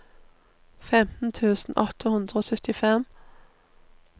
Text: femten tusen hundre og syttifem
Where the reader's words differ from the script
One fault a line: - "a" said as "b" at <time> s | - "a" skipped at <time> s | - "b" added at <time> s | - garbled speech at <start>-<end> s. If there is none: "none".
- "åtte" added at 1.8 s